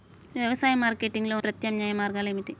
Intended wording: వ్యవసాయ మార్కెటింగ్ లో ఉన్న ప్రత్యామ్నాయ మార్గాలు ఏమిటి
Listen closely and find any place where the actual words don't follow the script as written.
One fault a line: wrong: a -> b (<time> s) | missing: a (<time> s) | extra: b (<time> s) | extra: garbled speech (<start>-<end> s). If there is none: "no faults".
missing: ఉన్న (1.4 s)